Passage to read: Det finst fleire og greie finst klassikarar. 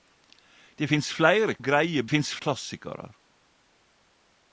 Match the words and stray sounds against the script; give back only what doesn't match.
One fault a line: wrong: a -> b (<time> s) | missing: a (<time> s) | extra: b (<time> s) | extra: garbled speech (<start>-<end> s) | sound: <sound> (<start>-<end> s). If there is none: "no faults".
no faults